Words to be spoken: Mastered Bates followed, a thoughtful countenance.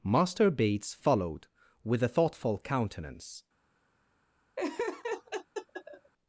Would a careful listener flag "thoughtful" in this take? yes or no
no